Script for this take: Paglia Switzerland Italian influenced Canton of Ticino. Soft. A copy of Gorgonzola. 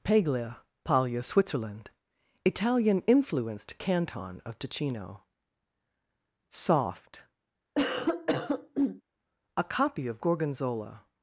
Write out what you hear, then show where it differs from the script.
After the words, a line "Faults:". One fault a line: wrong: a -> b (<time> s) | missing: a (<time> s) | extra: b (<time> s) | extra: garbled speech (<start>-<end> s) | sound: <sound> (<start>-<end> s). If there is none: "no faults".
Paglia paglia Switzerland Italian influenced Canton of Ticino. Soft. A copy of Gorgonzola.
Faults:
extra: paglia (0.8 s)
sound: cough (7.8-9.0 s)